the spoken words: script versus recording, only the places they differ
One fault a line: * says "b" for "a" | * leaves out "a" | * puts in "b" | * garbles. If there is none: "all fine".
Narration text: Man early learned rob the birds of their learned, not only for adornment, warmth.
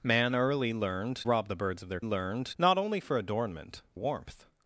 all fine